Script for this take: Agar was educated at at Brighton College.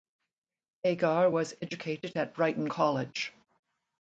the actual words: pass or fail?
fail